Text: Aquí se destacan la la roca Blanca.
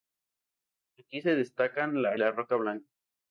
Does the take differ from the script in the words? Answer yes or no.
no